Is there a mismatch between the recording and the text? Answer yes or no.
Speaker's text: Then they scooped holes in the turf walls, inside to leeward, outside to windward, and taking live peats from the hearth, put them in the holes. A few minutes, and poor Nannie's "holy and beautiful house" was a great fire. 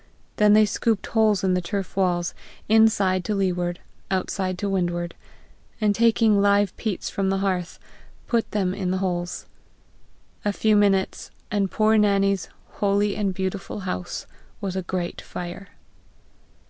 no